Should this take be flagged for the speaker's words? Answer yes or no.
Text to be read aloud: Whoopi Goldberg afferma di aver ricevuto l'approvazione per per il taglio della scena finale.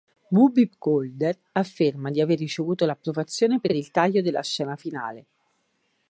no